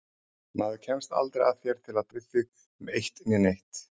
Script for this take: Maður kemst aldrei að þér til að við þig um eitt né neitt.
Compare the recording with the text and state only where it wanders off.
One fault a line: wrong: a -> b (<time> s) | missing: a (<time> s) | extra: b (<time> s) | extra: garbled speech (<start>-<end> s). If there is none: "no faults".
no faults